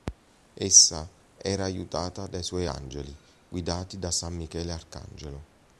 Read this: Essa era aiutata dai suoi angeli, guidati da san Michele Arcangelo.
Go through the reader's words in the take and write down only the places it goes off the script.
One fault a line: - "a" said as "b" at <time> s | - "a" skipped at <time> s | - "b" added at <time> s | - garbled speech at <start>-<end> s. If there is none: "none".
none